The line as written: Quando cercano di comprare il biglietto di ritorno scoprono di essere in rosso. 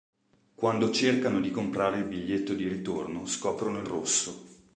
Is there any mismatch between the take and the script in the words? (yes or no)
yes